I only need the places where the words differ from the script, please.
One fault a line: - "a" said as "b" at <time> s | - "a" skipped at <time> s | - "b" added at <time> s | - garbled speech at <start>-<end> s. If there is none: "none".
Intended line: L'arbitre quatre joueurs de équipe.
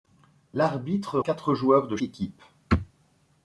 none